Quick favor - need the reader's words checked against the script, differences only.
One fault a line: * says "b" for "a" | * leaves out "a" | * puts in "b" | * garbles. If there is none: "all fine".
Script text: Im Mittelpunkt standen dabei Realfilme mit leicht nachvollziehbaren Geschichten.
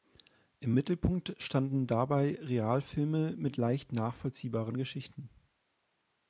all fine